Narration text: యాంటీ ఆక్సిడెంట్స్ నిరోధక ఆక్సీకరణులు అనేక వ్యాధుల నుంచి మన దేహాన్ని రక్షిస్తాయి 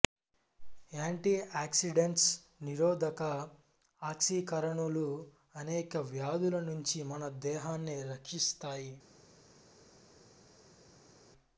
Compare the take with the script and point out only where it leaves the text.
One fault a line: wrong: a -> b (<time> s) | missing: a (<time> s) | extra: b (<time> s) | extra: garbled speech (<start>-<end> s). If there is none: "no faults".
no faults